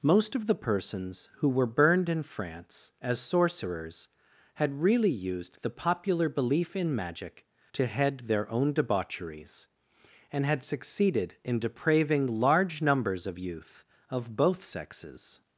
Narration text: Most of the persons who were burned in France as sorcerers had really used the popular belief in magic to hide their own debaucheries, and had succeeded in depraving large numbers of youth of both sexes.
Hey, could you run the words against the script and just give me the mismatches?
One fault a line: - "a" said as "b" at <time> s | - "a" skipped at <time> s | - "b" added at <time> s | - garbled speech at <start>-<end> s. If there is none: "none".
- "hide" said as "head" at 7.9 s